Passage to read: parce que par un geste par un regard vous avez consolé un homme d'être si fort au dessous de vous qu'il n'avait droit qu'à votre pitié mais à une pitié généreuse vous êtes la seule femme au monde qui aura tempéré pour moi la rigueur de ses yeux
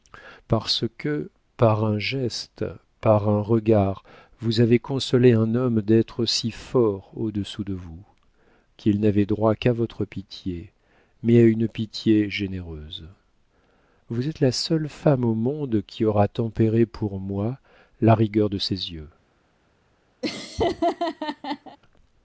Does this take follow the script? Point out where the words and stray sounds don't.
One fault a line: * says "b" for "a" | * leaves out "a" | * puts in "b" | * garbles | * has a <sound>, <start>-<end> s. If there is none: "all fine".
* has a laugh, 20.2-21.8 s